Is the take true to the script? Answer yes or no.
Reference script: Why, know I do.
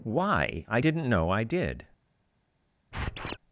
no